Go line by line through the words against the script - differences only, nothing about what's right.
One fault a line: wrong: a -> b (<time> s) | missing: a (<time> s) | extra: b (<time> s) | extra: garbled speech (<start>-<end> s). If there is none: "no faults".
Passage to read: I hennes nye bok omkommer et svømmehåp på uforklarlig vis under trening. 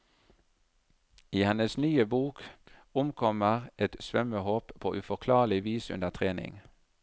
no faults